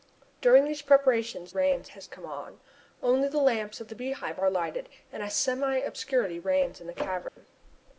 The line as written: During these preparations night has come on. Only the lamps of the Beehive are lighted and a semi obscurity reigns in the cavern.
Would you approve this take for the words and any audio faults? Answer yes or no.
no